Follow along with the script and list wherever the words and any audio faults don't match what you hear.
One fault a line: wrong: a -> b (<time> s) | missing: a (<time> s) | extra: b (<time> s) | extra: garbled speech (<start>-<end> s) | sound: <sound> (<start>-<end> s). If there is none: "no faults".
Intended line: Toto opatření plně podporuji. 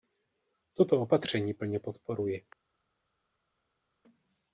no faults